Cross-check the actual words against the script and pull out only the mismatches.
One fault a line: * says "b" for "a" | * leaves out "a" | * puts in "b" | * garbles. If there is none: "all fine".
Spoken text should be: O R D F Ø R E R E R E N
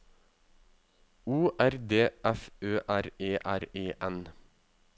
* leaves out "R E"